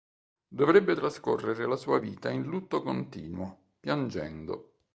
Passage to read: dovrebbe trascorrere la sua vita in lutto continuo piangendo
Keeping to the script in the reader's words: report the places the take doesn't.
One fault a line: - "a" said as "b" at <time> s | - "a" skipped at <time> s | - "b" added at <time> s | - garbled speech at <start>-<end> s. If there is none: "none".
none